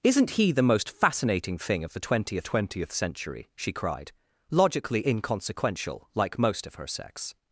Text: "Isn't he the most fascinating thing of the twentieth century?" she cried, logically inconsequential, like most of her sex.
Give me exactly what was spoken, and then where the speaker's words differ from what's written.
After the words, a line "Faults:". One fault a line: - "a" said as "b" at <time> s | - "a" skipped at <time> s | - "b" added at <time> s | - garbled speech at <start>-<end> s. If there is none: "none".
"Isn't he the most fascinating thing of the twentieth twentieth century?" she cried, logically inconsequential, like most of her sex.
Faults:
- "twentieth" added at 2.4 s